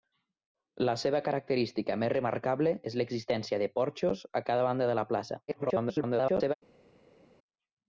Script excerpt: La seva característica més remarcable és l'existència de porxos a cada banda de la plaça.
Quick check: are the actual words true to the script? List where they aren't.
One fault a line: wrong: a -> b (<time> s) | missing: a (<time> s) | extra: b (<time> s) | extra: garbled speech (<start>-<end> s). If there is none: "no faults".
extra: garbled speech (5.5-6.5 s)